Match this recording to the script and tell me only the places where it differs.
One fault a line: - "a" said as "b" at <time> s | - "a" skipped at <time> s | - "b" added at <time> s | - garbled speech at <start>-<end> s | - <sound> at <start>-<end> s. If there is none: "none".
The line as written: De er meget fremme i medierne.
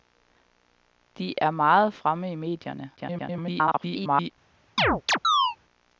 - garbled speech at 3.0-4.3 s
- chirp at 4.8-5.6 s